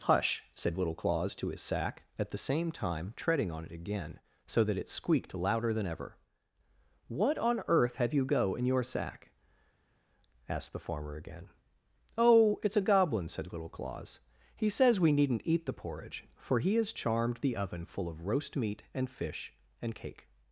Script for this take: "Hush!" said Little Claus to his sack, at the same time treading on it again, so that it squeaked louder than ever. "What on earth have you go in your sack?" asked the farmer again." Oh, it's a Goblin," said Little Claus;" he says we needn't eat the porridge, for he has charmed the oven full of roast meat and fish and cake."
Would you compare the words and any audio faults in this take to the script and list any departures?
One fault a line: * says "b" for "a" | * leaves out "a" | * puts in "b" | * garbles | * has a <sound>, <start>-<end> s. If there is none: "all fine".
all fine